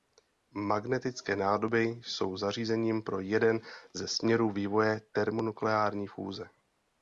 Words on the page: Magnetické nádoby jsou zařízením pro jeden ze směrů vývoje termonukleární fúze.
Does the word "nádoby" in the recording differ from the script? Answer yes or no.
no